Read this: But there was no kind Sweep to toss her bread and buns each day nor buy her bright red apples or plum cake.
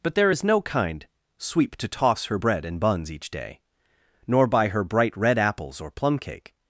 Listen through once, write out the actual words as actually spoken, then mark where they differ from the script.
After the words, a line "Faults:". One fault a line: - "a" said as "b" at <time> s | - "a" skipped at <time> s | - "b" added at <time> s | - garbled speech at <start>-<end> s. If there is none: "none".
But there is no kind Sweep to toss her bread and buns each day nor buy her bright red apples or plum cake.
Faults:
- "was" said as "is" at 0.3 s